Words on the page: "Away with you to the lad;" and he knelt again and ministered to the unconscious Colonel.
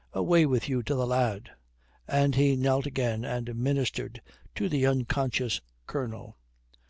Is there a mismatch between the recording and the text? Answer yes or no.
no